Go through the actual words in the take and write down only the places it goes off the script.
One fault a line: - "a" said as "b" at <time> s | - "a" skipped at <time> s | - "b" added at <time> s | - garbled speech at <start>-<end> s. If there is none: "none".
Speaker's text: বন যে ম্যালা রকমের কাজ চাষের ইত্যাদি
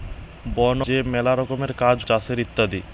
none